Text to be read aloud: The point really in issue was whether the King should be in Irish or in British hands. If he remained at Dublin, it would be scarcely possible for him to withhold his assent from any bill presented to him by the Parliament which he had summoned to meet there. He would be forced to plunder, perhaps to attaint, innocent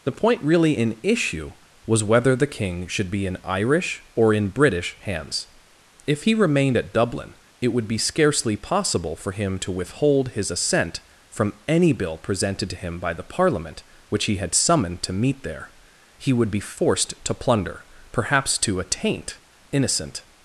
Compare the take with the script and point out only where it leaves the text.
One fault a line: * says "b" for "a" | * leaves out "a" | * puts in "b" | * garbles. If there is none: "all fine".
all fine